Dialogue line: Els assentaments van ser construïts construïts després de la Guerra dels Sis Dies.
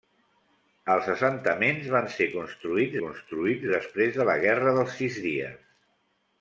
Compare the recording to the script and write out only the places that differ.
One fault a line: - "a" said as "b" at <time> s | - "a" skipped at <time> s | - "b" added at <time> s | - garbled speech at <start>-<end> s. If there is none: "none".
none